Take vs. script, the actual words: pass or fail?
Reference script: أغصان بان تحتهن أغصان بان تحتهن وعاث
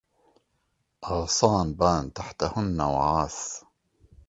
fail